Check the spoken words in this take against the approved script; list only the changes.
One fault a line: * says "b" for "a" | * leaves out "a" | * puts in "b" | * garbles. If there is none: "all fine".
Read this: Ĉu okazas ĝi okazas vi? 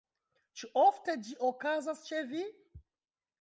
* says "ofte" for "okazas"
* puts in "ĉe"